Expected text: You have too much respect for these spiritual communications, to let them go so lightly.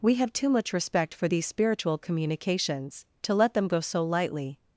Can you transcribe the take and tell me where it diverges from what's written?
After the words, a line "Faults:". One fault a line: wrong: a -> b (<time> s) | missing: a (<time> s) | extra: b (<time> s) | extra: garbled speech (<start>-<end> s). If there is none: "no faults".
We have too much respect for these spiritual communications, to let them go so lightly.
Faults:
wrong: You -> We (0.0 s)